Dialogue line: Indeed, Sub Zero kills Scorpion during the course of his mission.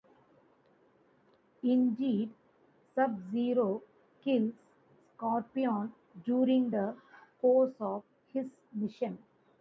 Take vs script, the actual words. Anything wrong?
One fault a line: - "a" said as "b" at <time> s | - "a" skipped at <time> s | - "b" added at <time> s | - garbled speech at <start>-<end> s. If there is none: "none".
none